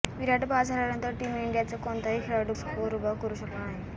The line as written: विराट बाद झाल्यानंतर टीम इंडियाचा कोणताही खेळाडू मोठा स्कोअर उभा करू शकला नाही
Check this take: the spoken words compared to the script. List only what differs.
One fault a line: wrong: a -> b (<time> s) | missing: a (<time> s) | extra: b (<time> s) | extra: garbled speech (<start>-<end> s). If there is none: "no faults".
missing: मोठा (2.5 s)